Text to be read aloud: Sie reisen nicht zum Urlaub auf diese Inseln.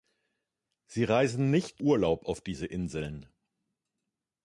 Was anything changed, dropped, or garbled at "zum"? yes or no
yes